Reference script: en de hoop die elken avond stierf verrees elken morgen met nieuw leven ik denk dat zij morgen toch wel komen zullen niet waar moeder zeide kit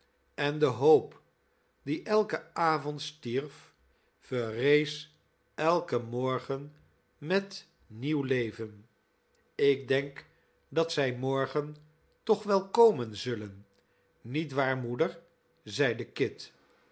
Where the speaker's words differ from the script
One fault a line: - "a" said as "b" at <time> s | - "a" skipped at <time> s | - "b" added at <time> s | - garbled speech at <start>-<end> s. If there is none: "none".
none